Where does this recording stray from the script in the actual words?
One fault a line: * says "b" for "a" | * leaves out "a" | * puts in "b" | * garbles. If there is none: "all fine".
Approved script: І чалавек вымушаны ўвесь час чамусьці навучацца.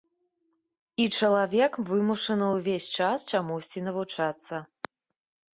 all fine